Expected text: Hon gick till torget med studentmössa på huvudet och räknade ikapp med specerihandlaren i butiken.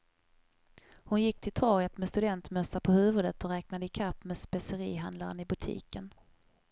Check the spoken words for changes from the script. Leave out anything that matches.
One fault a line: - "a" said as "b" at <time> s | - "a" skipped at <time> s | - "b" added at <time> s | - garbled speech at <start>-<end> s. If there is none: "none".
none